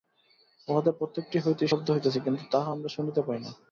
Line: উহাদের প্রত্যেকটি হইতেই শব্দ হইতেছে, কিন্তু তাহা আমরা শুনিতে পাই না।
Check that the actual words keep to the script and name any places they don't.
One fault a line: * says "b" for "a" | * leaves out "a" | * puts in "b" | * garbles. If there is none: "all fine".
all fine